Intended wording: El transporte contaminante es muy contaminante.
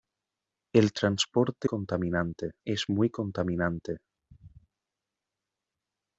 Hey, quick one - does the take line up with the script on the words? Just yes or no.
yes